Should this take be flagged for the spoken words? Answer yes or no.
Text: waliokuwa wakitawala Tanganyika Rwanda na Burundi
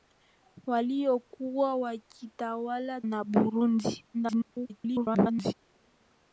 yes